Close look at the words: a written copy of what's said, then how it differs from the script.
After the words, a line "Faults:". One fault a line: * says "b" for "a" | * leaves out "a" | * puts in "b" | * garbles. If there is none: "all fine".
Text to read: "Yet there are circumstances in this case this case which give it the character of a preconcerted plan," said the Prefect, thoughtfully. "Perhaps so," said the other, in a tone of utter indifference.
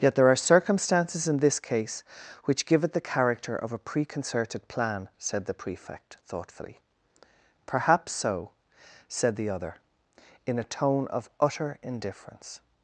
"Yet there are circumstances in this case which give it the character of a preconcerted plan," said the Prefect, thoughtfully. "Perhaps so," said the other, in a tone of utter indifference.
Faults:
* leaves out "this case"